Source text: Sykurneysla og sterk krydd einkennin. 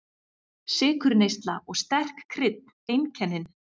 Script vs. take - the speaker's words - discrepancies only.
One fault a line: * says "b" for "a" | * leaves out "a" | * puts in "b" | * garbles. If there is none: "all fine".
all fine